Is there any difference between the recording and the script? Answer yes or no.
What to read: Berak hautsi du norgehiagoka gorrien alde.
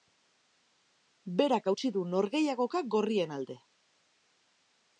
no